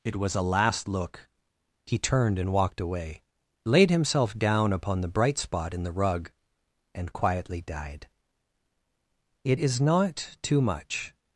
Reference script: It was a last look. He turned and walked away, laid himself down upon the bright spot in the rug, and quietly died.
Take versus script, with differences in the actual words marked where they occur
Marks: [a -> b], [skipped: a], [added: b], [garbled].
It was a last look. He turned and walked away, laid himself down upon the bright spot in the rug, and quietly died. [added: It is not too much]